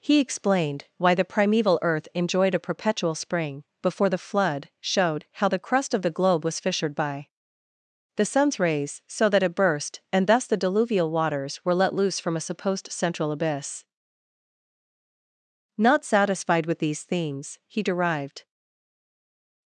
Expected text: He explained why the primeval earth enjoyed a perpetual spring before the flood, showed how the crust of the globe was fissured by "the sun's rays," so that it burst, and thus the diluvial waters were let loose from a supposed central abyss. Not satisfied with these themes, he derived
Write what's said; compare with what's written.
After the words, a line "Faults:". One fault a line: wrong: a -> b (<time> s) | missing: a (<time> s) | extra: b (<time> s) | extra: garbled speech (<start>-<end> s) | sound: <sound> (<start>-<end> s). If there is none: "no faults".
He explained why the primeval earth enjoyed a perpetual spring before the flood, showed how the crust of the globe was fissured by "the sun's rays," so that it burst, and thus the diluvial waters were let loose from a supposed central abyss. Not satisfied with these themes, he derived
Faults:
no faults